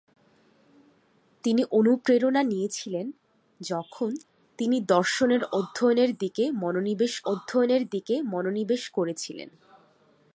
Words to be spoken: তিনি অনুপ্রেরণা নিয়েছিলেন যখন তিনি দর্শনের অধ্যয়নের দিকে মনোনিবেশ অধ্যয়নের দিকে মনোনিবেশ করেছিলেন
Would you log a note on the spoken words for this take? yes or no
no